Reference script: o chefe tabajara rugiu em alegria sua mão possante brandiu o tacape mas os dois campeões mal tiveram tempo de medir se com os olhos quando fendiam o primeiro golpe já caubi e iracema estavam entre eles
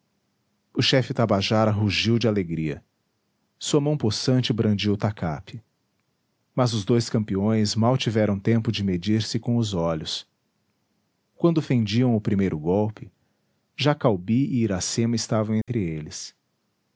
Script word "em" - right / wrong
wrong